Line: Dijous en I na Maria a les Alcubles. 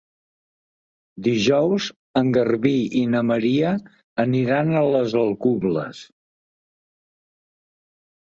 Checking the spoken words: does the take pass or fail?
fail